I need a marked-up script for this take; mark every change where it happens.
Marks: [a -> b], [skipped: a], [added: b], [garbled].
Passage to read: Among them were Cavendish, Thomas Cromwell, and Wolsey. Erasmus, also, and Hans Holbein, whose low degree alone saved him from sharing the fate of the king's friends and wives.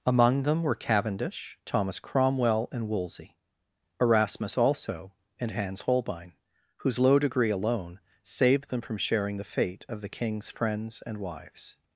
Among them were Cavendish, Thomas Cromwell, and Wolsey. Erasmus, also, and Hans Holbein, whose low degree alone saved [him -> them] from sharing the fate of the king's friends and wives.